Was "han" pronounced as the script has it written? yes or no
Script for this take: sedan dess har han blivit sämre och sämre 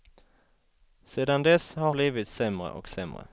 no